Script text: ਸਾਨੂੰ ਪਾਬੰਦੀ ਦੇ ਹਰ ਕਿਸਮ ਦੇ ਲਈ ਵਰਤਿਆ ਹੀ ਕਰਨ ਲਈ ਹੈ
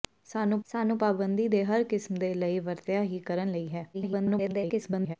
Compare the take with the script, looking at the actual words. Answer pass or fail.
fail